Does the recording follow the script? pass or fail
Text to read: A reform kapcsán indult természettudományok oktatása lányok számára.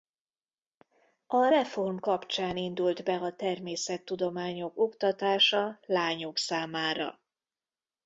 fail